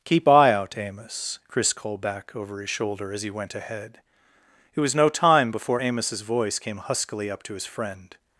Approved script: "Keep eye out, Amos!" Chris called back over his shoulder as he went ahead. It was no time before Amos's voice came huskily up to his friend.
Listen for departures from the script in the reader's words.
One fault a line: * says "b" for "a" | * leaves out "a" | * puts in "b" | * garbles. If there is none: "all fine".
all fine